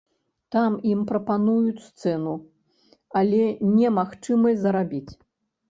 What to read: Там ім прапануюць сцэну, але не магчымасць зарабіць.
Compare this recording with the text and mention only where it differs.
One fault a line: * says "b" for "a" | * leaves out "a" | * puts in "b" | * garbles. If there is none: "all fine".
all fine